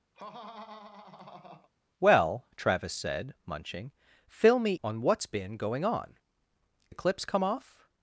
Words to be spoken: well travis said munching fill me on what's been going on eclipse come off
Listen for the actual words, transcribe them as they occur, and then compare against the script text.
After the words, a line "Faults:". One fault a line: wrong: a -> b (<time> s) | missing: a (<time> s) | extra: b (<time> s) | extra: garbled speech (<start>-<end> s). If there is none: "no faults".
well travis said munching fill me on what's been going on eclipse come off
Faults:
no faults